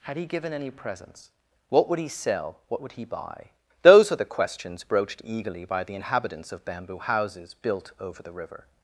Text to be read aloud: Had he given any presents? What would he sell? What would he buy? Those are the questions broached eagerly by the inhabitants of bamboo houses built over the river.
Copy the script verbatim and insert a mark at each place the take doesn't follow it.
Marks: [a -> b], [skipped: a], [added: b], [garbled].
Had he given any presents? What would he sell? What would he buy? Those are the questions broached eagerly by the inhabitants of bamboo houses built over the river.